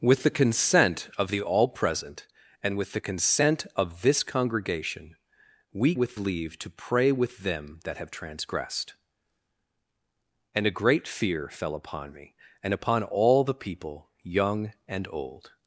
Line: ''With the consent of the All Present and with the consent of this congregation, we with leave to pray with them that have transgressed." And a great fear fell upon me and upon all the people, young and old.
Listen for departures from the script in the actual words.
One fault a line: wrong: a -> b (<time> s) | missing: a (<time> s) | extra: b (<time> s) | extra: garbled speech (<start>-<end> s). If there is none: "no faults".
no faults